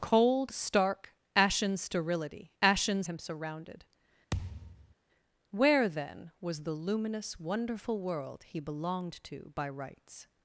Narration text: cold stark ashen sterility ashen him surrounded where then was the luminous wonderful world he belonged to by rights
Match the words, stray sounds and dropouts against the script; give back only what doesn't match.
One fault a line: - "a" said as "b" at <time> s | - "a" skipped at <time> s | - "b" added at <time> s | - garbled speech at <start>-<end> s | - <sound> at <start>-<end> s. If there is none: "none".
- thud at 4.3-4.9 s